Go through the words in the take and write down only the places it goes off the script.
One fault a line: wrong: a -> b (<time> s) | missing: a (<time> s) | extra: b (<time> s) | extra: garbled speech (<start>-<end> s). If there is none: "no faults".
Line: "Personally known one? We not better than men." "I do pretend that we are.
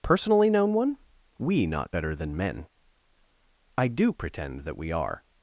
no faults